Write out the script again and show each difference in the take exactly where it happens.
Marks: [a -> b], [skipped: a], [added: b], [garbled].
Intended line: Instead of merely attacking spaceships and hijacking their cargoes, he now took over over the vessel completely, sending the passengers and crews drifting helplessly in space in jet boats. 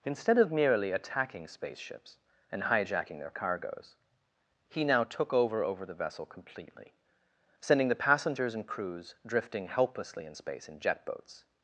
Instead of merely attacking spaceships and hijacking their cargoes, he now took over over the vessel completely, sending the passengers and crews drifting helplessly in space in jet boats.